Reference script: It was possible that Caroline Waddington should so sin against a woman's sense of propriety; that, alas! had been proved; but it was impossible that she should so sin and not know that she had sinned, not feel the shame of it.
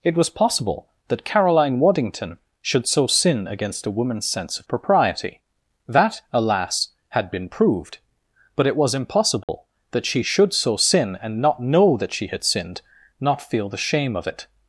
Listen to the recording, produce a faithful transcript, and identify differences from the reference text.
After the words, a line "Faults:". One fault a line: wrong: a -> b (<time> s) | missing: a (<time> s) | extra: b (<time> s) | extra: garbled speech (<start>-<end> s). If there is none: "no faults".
It was possible that Caroline Waddington should so sin against a woman's sense of propriety; that, alas! had been proved; but it was impossible that she should so sin and not know that she had sinned, not feel the shame of it.
Faults:
no faults